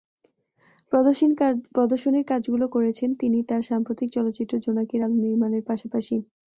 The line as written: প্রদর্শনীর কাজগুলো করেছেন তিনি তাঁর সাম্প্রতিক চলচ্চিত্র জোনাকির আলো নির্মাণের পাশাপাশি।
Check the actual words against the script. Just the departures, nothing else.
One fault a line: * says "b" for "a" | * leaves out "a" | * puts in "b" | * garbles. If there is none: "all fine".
all fine